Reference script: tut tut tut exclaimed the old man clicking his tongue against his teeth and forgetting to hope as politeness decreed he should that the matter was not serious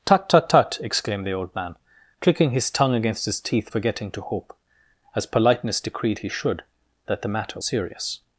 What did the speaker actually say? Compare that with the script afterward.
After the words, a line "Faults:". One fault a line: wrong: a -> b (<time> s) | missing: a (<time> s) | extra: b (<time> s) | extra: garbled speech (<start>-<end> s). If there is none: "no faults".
tut tut tut exclaimed the old man clicking his tongue against his teeth forgetting to hope as politeness decreed he should that the matter serious
Faults:
missing: and (3.7 s)
missing: was not (7.6 s)